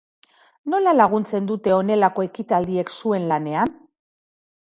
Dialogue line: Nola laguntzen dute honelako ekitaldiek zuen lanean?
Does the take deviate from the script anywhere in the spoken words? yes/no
no